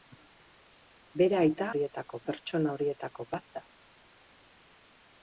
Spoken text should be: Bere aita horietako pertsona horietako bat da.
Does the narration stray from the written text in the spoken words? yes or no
no